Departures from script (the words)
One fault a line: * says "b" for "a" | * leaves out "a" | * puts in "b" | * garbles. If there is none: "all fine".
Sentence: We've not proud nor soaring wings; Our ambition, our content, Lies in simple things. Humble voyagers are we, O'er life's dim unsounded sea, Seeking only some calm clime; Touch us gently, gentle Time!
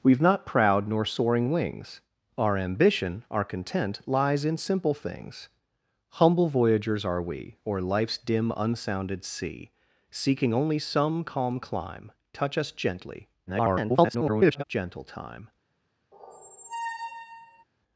* garbles